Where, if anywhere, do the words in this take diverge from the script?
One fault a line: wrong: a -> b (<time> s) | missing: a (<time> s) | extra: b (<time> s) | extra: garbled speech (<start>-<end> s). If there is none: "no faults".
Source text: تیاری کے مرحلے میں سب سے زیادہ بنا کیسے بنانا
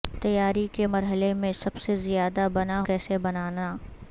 no faults